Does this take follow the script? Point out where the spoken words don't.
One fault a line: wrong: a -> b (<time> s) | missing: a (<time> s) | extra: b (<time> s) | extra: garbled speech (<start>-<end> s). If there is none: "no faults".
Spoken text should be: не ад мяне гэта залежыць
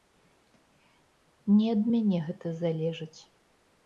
no faults